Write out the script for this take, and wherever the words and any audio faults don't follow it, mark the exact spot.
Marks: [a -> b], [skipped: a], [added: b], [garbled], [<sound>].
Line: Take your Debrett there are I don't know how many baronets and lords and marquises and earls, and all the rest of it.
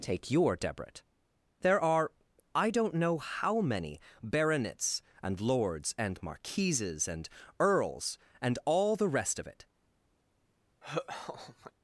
Take your Debrett there are I don't know how many baronets and lords and marquises and earls, and all the rest of it. [laugh]